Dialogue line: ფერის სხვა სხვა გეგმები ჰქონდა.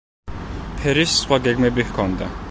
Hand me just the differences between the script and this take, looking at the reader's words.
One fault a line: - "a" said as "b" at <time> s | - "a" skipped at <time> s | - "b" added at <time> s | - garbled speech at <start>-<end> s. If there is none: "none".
- "სხვა" skipped at 1.4 s